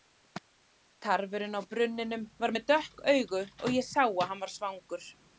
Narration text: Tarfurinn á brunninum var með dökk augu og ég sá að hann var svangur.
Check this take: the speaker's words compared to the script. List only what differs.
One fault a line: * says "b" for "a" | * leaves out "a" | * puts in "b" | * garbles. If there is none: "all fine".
all fine